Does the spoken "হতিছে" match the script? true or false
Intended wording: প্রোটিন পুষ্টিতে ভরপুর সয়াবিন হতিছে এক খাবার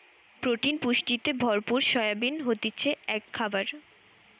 true